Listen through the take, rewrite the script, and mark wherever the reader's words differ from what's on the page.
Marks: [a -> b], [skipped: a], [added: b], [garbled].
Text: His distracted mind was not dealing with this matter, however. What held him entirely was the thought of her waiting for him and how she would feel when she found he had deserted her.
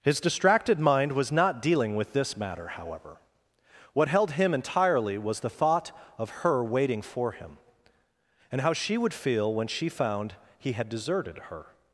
His distracted mind was not dealing with this matter, however. What held him entirely was the thought of her waiting for him and how she would feel when she found he had deserted her.